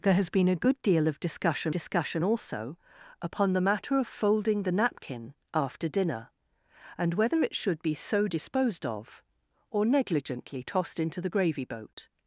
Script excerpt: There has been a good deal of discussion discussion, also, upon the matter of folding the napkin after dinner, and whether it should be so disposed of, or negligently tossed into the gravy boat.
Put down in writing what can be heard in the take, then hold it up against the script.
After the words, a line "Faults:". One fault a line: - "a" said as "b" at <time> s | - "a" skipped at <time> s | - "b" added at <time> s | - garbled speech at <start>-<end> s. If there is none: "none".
There has been a good deal of discussion discussion, also, upon the matter of folding the napkin after dinner, and whether it should be so disposed of, or negligently tossed into the gravy boat.
Faults:
none